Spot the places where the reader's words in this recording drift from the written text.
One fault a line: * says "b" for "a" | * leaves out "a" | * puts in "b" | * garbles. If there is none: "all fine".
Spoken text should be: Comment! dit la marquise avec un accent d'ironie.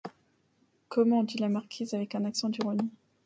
all fine